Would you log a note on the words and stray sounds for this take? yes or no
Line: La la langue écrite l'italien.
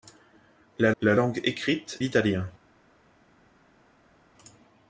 no